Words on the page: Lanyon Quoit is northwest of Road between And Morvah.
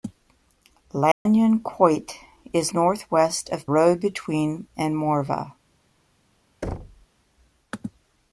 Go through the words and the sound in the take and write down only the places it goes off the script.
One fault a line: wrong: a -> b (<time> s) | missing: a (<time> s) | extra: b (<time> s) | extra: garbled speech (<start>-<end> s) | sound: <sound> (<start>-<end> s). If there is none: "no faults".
sound: dropout (1.1-1.3 s)
sound: thud (6.6-7.1 s)